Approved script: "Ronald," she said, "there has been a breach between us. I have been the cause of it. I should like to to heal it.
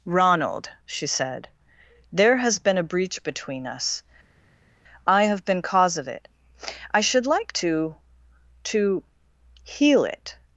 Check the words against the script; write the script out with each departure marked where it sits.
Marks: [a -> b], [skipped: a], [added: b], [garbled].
"Ronald," she said, "there has been a breach between us. I have been [skipped: the] cause of it. I should like to to heal it.